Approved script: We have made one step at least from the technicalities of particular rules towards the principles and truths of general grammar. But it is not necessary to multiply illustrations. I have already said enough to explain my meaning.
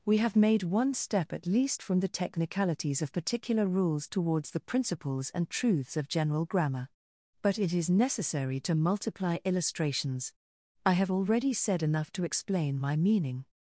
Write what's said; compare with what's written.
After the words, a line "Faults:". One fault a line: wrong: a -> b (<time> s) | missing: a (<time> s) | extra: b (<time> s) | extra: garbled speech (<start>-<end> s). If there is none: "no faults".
We have made one step at least from the technicalities of particular rules towards the principles and truths of general grammar. But it is necessary to multiply illustrations. I have already said enough to explain my meaning.
Faults:
missing: not (7.9 s)